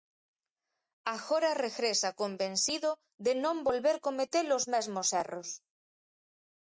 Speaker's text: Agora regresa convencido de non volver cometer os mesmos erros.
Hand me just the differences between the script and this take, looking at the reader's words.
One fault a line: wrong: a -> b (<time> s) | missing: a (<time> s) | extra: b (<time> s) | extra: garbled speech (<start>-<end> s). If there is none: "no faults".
no faults